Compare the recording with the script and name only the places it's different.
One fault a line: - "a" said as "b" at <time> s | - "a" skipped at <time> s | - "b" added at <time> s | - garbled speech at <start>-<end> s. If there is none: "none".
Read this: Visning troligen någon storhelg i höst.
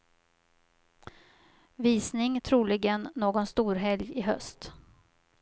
none